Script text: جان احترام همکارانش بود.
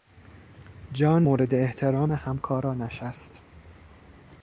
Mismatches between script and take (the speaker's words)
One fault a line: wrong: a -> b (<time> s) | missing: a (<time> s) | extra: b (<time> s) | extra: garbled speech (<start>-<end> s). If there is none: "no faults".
extra: مورد (1.2 s)
wrong: بود -> است (3.0 s)